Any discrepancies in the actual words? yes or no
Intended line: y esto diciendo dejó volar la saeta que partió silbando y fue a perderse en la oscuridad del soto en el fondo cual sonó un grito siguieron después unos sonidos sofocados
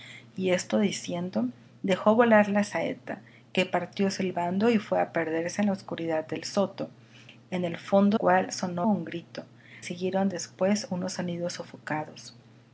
no